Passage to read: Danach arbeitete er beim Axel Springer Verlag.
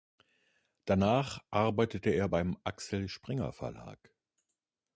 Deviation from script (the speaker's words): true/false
false